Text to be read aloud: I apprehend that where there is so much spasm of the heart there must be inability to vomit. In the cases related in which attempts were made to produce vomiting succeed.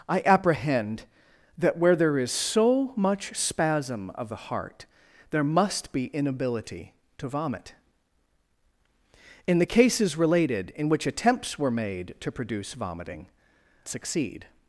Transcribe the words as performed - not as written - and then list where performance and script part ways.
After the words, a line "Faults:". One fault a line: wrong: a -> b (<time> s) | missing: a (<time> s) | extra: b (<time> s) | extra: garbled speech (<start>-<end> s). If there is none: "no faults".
I apprehend that where there is so much spasm of the heart there must be inability to vomit. In the cases related in which attempts were made to produce vomiting succeed.
Faults:
no faults